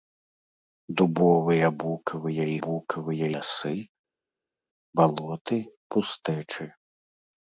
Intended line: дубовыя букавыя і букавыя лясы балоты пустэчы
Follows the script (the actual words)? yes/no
yes